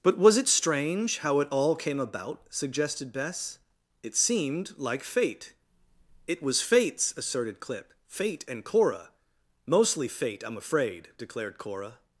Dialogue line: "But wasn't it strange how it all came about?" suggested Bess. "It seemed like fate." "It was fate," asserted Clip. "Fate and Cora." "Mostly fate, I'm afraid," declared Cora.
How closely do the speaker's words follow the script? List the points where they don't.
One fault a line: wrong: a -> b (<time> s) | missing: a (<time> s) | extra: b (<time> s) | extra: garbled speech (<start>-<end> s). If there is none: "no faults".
wrong: wasn't -> was (0.2 s)
wrong: fate -> fates (6.6 s)